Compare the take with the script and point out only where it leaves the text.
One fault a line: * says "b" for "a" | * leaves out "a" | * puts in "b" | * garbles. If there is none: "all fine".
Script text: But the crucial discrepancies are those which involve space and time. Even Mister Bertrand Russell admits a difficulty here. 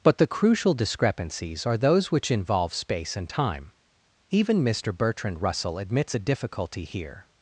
all fine